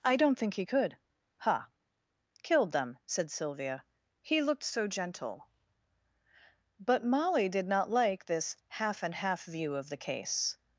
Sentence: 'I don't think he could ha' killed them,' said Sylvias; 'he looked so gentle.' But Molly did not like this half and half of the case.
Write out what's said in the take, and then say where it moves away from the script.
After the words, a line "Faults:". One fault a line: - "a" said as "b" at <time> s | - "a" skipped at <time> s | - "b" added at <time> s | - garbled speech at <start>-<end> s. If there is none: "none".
'I don't think he could ha' killed them,' said Sylvia; 'he looked so gentle.' But Molly did not like this half and half view of the case.
Faults:
- "Sylvias" said as "Sylvia" at 3.3 s
- "view" added at 9.4 s